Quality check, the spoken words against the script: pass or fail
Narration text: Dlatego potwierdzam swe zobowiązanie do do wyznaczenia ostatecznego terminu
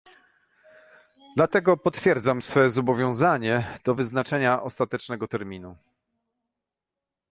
fail